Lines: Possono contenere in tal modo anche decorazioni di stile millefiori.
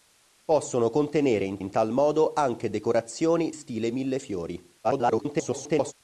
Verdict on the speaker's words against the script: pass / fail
fail